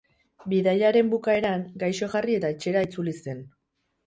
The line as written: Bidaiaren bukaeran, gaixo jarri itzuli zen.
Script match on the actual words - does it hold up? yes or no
no